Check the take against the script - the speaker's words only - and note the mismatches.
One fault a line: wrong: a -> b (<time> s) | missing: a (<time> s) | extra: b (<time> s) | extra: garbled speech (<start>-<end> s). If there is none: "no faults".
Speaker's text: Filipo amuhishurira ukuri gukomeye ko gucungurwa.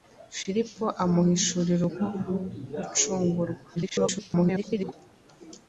missing: ukuri gukomeye (1.8 s)
extra: garbled speech (3.8-4.9 s)